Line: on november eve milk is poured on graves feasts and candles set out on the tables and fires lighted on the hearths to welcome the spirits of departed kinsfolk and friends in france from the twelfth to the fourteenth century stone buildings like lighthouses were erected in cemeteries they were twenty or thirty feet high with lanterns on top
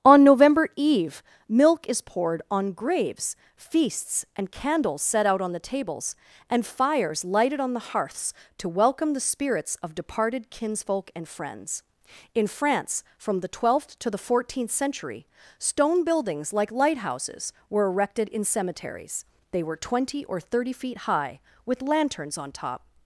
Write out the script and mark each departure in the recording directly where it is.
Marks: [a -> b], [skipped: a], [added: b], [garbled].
on november eve milk is poured on graves feasts and candles set out on the tables and fires lighted on the hearths to welcome the spirits of departed kinsfolk and friends in france from the twelfth to the fourteenth century stone buildings like lighthouses were erected in cemeteries they were twenty or thirty feet high with lanterns on top